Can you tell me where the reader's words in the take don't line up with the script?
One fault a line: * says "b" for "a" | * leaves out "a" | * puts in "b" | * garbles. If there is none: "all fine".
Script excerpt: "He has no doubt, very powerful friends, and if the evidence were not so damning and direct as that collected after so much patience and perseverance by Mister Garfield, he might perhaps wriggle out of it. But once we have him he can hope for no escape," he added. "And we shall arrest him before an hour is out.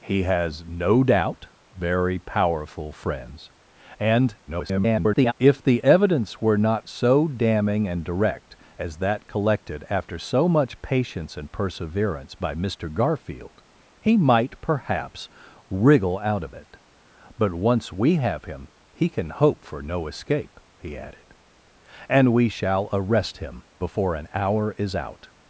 * garbles